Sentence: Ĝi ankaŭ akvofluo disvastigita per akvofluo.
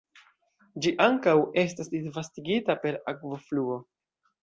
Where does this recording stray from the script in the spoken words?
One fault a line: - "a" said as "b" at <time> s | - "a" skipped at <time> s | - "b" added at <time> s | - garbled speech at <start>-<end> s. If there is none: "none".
- "akvofluo" said as "estas" at 1.6 s